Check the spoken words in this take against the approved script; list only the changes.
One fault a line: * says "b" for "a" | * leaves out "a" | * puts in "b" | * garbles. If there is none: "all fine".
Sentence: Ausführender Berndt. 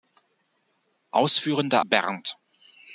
all fine